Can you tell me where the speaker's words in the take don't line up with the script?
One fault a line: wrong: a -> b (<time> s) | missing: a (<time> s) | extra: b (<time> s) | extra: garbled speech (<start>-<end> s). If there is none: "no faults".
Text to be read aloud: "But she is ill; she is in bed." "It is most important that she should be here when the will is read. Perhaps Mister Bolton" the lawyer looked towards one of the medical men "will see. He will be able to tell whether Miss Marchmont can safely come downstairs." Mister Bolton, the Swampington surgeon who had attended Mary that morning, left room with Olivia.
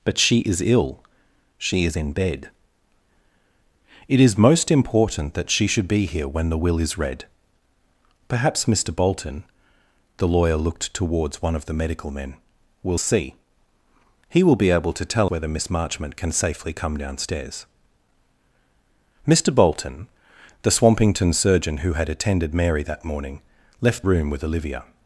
no faults